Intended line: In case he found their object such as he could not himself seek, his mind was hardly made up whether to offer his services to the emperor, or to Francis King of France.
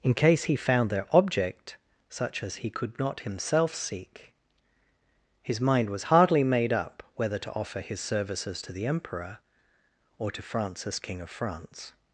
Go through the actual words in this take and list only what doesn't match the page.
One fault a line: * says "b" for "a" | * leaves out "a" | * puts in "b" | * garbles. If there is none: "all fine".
all fine